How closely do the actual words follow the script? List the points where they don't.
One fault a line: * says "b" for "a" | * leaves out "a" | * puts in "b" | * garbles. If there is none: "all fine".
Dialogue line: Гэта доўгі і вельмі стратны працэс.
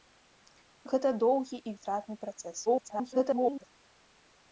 * leaves out "вельмі"
* garbles